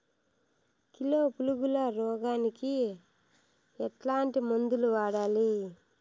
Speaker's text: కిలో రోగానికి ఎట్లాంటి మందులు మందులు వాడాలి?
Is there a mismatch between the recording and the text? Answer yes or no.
yes